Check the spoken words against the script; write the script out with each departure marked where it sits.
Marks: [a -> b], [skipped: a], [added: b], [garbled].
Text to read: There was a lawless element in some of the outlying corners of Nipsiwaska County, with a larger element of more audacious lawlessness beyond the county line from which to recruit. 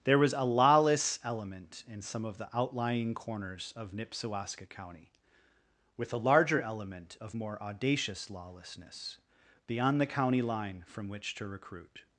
There was a lawless element in some of the outlying corners of Nipsiwaska County, with a larger element of more audacious lawlessness beyond the county line from which to recruit.